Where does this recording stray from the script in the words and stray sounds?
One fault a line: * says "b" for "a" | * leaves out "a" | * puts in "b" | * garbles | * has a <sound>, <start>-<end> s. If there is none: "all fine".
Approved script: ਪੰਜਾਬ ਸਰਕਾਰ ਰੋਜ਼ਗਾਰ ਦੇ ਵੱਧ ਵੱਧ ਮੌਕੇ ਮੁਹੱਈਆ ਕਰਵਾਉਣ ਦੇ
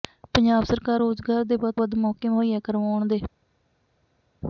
all fine